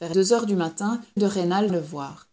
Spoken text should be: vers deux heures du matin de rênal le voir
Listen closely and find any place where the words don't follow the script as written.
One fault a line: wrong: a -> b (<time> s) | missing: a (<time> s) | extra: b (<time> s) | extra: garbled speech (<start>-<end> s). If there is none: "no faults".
no faults